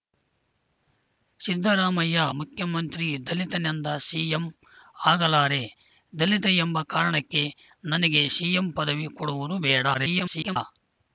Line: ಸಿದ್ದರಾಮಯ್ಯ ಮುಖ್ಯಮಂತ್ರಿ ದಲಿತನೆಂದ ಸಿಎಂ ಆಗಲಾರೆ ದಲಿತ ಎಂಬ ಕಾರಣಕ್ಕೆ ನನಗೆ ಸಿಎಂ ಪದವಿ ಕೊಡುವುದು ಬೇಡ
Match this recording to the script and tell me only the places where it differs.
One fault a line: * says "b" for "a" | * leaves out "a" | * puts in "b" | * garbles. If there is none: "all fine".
* garbles